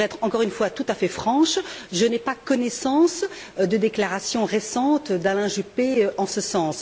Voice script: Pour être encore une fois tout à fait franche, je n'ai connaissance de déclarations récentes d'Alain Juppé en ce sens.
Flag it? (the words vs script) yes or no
yes